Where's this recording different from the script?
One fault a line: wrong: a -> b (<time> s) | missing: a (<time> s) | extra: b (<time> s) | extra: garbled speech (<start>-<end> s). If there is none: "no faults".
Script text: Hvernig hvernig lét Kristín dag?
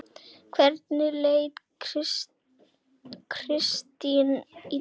missing: hvernig (1.1 s)
extra: í (4.3 s)